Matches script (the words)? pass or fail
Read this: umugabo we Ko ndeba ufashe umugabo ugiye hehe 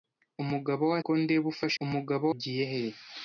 pass